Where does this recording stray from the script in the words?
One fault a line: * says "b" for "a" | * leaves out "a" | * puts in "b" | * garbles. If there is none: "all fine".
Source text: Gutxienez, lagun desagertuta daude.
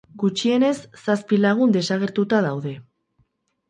* puts in "zazpi"